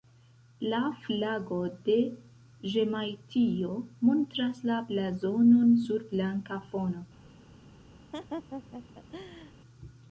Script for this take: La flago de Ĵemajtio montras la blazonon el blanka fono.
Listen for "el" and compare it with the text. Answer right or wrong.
wrong